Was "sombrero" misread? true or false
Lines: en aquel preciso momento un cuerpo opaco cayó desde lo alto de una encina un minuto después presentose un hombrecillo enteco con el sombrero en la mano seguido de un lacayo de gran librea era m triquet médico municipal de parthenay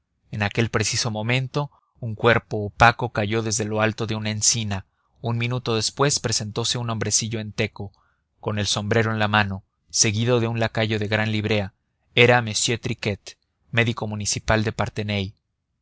false